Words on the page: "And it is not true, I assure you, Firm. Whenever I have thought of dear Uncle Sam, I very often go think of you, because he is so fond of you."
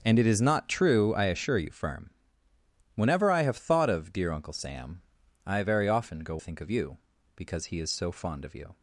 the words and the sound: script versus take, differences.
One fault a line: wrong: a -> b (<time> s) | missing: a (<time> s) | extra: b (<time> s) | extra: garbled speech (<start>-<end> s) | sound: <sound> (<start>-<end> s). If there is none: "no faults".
no faults